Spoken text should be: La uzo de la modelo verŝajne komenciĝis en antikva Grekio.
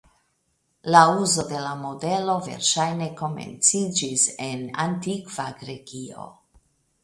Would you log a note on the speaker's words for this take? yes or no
no